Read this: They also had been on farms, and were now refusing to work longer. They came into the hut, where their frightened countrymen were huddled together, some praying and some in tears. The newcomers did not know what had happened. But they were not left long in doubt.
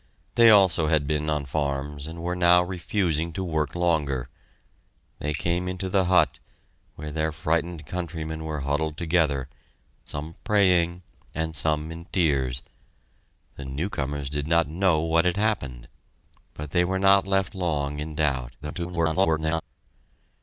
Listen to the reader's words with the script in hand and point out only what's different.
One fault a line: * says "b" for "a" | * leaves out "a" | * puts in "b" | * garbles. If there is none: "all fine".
* garbles